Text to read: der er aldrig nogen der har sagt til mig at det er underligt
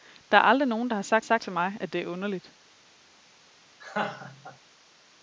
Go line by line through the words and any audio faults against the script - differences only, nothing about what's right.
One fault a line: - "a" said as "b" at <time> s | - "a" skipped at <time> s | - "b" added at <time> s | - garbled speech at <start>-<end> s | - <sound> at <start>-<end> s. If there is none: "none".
- "sagt" added at 1.2 s
- laugh at 3.8-4.6 s